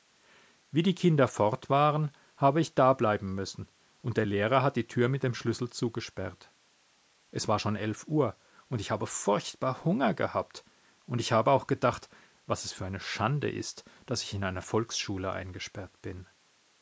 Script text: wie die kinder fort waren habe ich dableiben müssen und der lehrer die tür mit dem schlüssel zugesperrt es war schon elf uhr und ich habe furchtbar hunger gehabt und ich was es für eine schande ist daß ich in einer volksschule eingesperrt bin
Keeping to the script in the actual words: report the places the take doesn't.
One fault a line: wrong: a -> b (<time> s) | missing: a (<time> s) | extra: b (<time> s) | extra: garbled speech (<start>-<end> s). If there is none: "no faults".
extra: hat (4.6 s)
extra: habe auch gedacht (11.3 s)